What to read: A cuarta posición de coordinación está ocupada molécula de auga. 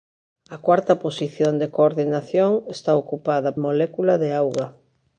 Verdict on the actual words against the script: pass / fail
pass